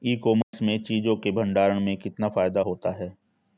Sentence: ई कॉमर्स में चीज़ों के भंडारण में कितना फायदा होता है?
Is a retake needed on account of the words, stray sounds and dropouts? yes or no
yes